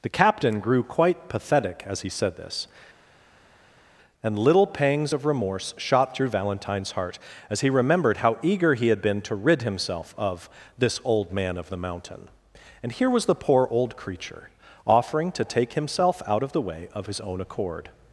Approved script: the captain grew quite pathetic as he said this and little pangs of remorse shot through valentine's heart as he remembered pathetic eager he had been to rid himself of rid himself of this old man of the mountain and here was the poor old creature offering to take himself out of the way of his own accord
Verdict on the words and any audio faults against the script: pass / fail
fail